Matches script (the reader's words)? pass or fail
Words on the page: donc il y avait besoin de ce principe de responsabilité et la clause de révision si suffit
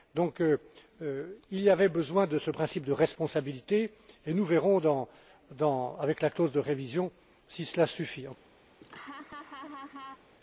fail